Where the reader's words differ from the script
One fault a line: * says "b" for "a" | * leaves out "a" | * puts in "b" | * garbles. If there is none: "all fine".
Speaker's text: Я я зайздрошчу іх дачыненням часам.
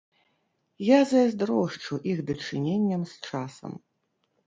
* leaves out "я"
* puts in "з"